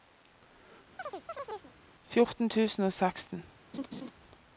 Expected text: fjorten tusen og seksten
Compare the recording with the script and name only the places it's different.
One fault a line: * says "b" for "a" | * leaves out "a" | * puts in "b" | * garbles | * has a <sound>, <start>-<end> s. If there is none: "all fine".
* has a chirp, 1.0-1.7 s
* has a laugh, 3.7-4.1 s